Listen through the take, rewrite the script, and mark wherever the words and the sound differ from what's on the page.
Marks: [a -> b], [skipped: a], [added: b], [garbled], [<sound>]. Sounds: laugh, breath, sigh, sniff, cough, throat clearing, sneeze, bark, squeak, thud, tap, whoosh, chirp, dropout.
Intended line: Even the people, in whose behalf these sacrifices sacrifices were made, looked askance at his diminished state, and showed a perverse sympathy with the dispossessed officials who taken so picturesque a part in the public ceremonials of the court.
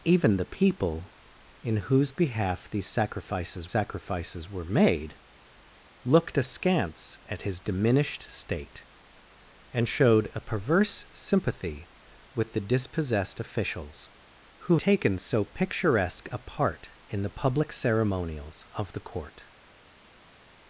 Even the people, in whose behalf these sacrifices sacrifices were made, looked askance at his diminished state, and showed a perverse sympathy with the dispossessed officials who taken so picturesque a part in the public ceremonials of the court.